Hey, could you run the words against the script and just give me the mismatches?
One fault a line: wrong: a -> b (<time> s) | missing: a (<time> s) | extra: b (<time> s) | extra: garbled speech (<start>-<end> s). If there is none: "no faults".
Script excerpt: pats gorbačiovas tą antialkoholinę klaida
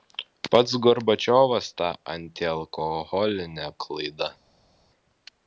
no faults